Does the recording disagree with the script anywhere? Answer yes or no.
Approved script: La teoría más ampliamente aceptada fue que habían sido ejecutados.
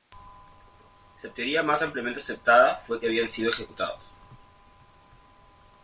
no